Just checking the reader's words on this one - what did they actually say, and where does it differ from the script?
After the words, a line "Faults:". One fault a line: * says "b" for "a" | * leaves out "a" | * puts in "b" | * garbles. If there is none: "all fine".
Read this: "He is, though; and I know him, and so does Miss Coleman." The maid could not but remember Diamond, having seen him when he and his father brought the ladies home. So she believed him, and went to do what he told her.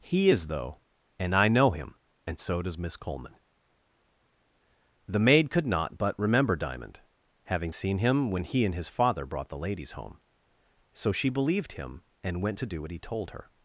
"He is, though; and I know him, and so does Miss Coleman." The maid could not but remember Diamond, having seen him when he and his father brought the ladies home. So she believed him, and went to do what he told her.
Faults:
all fine